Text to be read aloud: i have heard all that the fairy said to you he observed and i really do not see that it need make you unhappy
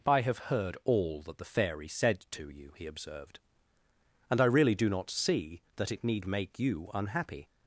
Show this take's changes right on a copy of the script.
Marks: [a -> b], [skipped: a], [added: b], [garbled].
i have heard all that the fairy said to you he observed and i really do not see that it need make you unhappy